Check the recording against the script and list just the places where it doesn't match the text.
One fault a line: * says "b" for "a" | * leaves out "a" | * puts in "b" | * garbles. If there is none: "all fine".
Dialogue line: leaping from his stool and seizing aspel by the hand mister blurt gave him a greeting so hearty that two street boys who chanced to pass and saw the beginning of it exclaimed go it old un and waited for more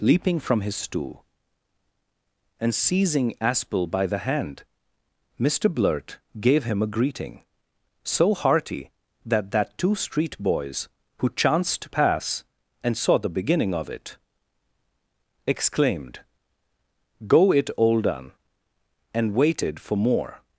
* puts in "that"